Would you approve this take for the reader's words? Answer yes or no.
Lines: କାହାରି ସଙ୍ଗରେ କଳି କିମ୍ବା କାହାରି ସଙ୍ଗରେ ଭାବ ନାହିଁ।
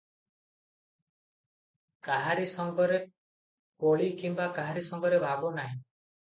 yes